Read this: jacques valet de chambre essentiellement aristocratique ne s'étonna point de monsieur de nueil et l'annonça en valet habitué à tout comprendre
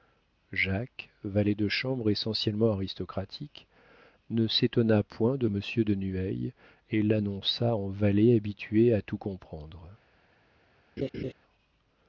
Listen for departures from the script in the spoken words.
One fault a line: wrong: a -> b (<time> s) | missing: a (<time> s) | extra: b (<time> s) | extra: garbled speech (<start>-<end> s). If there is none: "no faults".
no faults